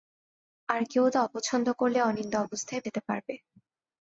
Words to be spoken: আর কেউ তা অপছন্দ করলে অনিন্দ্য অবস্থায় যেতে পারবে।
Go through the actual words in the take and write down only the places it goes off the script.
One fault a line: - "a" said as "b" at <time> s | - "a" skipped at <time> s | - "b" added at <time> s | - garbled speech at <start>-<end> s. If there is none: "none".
none